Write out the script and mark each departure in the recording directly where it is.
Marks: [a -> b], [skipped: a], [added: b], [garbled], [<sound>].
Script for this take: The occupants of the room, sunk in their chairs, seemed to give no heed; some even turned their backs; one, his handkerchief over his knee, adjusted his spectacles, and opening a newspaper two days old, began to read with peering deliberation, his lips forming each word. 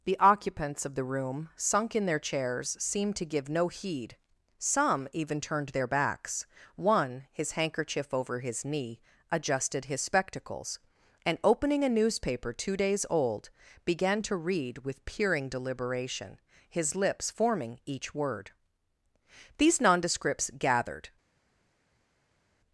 The occupants of the room, sunk in their chairs, seemed to give no heed; some even turned their backs; one, his handkerchief over his knee, adjusted his spectacles, and opening a newspaper two days old, began to read with peering deliberation, his lips forming each word. [added: These nondescripts gathered]